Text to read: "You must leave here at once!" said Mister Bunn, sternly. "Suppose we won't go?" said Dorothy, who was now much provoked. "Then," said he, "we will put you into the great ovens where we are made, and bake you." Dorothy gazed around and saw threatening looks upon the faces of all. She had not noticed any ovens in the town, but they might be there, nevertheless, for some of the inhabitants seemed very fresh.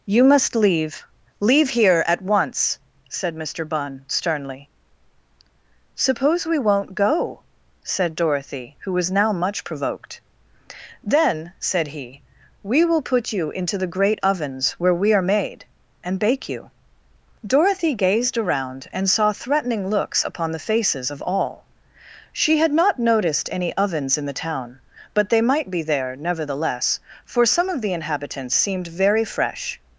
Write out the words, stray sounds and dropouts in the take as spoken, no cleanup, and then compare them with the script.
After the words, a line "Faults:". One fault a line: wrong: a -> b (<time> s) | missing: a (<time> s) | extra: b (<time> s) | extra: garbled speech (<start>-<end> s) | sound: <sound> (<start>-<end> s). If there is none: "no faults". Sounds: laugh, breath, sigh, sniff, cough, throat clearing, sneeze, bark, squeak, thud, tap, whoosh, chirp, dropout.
"You must leave leave here at once!" said Mister Bunn, sternly. "Suppose we won't go?" said Dorothy, who was now much provoked. "Then," said he, "we will put you into the great ovens where we are made, and bake you." Dorothy gazed around and saw threatening looks upon the faces of all. She had not noticed any ovens in the town, but they might be there, nevertheless, for some of the inhabitants seemed very fresh.
Faults:
extra: leave (1.4 s)